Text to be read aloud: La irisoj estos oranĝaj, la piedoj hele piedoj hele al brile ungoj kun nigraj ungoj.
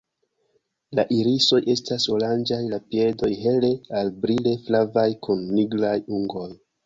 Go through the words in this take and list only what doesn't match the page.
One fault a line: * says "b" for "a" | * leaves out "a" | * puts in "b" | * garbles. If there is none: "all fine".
* says "estas" for "estos"
* leaves out "piedoj hele"
* says "flavaj" for "ungoj"